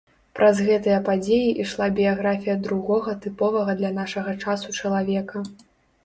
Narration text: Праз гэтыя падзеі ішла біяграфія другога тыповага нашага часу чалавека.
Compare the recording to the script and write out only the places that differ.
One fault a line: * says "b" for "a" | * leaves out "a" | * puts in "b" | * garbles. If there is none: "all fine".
* puts in "для"